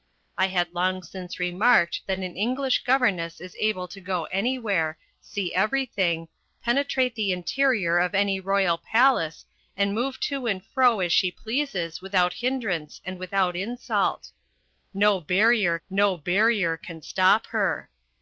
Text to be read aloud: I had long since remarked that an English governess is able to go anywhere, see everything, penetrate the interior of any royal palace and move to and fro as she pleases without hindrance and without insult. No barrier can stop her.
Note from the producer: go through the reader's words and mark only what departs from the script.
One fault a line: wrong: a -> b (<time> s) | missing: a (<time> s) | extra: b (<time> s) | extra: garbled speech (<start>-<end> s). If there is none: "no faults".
extra: no barrier (15.9 s)